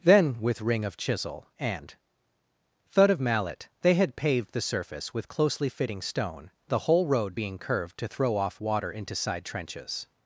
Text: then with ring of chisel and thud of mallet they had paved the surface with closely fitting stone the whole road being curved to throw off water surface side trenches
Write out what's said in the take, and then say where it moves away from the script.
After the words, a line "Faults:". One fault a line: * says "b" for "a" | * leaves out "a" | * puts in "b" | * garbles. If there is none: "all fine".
then with ring of chisel and thud of mallet they had paved the surface with closely fitting stone the whole road being curved to throw off water into side trenches
Faults:
* says "into" for "surface"